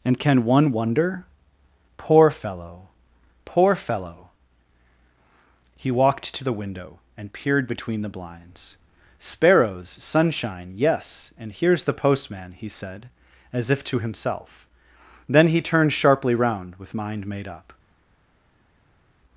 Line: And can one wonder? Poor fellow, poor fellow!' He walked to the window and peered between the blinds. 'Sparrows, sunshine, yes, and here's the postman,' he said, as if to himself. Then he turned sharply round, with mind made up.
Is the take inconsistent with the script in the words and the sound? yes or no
no